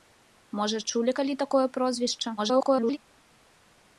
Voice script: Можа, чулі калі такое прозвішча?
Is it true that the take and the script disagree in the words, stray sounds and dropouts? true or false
true